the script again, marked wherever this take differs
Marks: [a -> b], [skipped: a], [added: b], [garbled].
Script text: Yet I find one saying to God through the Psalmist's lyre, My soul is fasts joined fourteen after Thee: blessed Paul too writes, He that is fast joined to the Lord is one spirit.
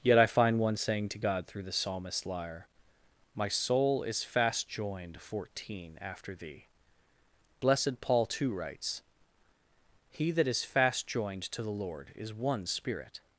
Yet I find one saying to God through the Psalmist's lyre, My soul is [fasts -> fast] joined fourteen after Thee: blessed Paul too writes, He that is fast joined to the Lord is one spirit.